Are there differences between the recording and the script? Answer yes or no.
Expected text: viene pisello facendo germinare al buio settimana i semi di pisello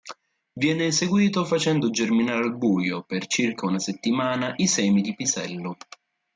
yes